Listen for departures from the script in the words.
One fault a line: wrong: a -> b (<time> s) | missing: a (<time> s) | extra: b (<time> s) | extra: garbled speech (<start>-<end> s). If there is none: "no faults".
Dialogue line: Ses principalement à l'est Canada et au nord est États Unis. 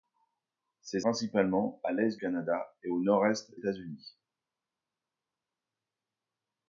no faults